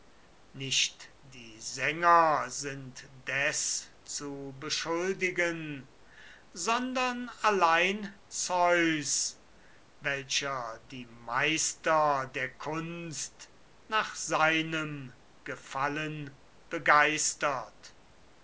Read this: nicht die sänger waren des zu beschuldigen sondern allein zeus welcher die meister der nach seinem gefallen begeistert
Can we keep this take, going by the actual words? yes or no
no